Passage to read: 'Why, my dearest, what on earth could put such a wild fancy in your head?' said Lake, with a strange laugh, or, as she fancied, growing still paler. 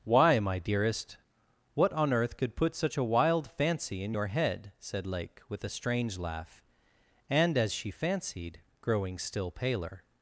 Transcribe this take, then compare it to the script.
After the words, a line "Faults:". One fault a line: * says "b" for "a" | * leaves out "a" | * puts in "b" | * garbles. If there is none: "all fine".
'Why, my dearest, what on earth could put such a wild fancy in your head?' said Lake, with a strange laugh, and, as she fancied, growing still paler.
Faults:
* says "and" for "or"